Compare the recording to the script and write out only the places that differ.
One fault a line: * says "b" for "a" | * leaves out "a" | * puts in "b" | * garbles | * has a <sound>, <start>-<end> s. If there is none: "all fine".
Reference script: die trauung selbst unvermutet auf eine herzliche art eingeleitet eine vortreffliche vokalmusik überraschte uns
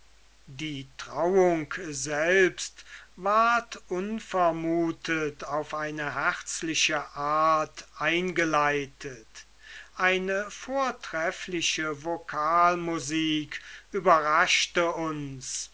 * puts in "ward"